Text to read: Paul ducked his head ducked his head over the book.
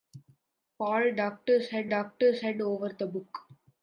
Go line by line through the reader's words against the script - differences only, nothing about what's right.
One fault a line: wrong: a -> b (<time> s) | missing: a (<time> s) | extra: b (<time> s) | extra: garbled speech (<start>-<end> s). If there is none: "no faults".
no faults